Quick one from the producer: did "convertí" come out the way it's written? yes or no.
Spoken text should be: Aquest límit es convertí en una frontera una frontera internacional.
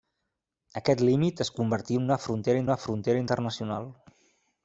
yes